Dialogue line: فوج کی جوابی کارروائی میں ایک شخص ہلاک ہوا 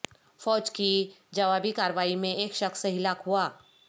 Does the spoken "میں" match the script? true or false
true